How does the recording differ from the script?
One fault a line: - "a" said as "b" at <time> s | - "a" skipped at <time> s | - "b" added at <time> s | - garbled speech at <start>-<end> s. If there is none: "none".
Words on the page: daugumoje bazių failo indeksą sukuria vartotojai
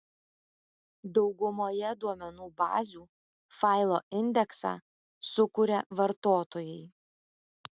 - "duomenų" added at 2.0 s